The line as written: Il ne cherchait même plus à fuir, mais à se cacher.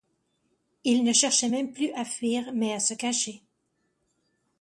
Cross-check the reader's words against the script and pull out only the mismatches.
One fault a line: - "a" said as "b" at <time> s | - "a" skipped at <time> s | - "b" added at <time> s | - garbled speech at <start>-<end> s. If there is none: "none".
none